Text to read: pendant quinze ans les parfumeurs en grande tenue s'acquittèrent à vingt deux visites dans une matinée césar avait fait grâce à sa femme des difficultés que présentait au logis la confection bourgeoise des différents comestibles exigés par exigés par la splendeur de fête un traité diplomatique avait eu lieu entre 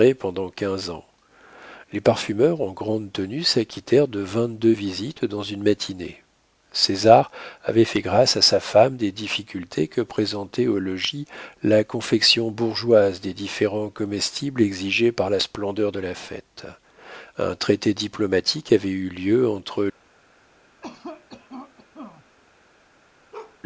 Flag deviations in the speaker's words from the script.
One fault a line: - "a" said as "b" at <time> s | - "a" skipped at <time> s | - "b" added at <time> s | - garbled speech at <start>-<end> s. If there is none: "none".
- "à" said as "de" at 4.1 s
- "exigés par" skipped at 15.3 s
- "la" added at 16.0 s